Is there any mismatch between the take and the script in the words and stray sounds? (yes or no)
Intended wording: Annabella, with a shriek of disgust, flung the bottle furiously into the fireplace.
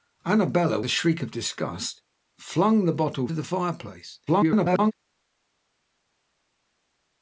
yes